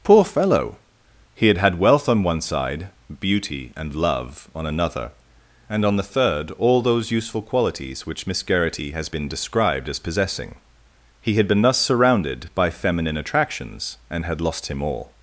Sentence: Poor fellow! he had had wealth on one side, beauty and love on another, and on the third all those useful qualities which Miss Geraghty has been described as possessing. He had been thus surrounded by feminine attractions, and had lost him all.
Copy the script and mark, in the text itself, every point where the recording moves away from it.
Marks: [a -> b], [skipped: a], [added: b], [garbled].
Poor fellow! he had had wealth on one side, beauty and love on another, and on the third all those useful qualities which Miss Geraghty has been described as possessing. He had been thus surrounded by feminine attractions, and had lost him all.